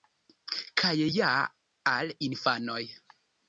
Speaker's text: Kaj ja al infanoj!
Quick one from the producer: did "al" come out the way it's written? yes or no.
yes